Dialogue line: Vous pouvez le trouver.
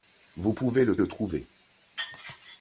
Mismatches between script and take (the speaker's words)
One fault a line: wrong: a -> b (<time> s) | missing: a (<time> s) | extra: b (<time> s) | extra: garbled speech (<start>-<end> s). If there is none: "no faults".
extra: le (1.0 s)